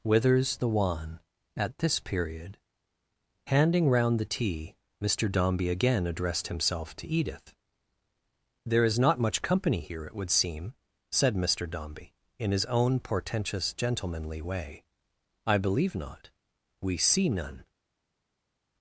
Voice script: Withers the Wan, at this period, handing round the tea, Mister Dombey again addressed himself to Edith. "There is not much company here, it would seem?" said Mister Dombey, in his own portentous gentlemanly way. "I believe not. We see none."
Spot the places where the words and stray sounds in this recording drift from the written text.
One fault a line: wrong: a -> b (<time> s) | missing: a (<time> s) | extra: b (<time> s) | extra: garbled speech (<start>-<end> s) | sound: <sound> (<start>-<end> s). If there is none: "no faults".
no faults